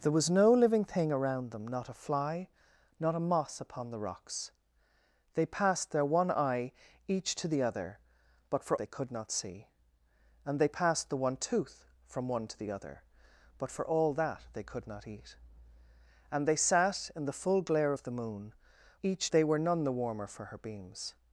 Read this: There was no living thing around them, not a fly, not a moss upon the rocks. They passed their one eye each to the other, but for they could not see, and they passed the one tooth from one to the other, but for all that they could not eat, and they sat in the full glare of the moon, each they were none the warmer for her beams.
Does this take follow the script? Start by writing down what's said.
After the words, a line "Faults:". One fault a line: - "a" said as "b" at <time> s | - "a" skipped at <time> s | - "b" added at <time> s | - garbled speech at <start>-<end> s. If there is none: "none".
There was no living thing around them, not a fly, not a moss upon the rocks. They passed their one eye each to the other, but for they could not see, and they passed the one tooth from one to the other, but for all that they could not eat, and they sat in the full glare of the moon, each they were none the warmer for her beams.
Faults:
none